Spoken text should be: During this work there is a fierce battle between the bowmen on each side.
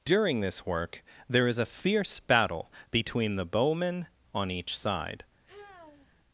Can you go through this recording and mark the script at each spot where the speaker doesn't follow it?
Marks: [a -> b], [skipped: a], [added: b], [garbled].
During this work there is a fierce battle between the bowmen on each side.